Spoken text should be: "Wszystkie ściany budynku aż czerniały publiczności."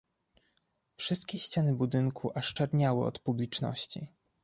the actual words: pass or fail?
fail